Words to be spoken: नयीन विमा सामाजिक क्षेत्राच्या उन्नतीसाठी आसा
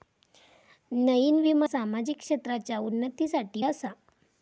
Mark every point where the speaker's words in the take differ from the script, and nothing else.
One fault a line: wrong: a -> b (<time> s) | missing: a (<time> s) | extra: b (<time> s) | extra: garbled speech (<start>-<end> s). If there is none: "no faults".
no faults